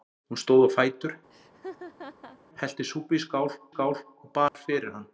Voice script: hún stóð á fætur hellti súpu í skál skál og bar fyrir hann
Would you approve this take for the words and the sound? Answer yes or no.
no